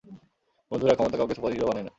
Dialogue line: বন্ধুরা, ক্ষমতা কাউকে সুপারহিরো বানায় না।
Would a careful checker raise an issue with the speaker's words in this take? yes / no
no